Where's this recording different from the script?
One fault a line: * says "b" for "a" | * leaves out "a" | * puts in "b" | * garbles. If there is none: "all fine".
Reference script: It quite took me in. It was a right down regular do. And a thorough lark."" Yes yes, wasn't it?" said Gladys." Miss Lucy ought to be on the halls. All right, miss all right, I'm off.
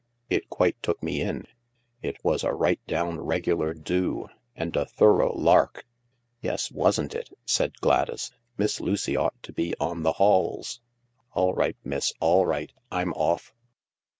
* leaves out "yes"